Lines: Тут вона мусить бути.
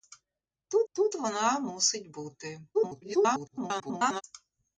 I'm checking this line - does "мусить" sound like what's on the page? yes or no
yes